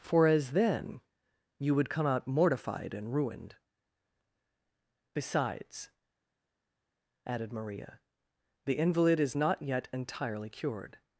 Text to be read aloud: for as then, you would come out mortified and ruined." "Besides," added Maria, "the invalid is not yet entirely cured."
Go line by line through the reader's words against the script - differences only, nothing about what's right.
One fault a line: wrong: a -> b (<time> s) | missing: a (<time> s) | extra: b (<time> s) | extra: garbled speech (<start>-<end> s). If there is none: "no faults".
no faults